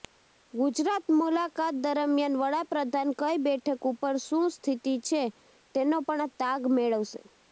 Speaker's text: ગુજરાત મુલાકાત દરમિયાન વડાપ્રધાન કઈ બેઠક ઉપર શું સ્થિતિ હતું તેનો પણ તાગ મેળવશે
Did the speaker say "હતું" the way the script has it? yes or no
no